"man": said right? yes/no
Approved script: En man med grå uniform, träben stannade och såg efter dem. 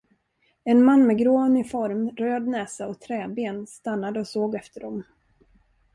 yes